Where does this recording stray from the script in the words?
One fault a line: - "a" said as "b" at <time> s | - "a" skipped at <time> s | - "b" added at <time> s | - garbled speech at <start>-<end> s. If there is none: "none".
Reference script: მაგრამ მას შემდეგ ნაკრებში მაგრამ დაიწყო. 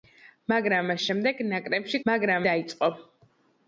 none